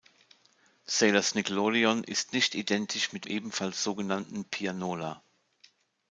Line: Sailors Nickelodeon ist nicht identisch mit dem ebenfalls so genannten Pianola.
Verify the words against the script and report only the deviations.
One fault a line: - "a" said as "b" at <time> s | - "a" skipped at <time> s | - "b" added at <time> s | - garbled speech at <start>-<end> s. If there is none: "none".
- "dem" skipped at 3.3 s